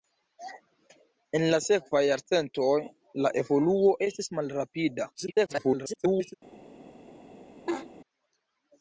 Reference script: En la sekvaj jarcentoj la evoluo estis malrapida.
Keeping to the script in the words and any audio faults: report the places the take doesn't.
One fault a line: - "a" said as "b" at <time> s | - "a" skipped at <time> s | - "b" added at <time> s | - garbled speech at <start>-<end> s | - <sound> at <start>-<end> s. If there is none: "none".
- garbled speech at 5.1-6.3 s
- laugh at 7.7-7.9 s